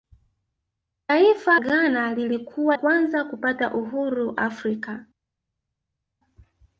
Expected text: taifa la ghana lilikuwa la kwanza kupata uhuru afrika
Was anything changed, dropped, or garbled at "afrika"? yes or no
no